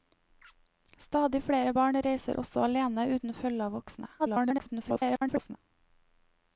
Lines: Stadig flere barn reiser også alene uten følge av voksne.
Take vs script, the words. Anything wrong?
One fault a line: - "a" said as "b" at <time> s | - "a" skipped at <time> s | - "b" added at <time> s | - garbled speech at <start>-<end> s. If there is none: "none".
- garbled speech at 4.2-5.6 s